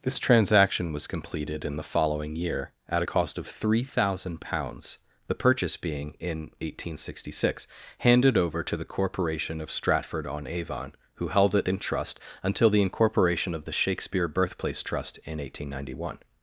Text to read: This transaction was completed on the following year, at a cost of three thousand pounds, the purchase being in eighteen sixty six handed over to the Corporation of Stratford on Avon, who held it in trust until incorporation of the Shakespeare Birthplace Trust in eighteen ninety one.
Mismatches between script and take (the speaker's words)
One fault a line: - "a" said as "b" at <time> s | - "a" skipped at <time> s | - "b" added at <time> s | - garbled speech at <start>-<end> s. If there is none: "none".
- "on" said as "in" at 1.6 s
- "the" added at 12.7 s